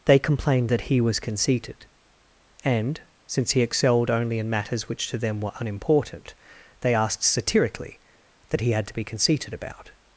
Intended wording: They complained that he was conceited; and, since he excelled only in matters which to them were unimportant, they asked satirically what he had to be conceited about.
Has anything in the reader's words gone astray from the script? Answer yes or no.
yes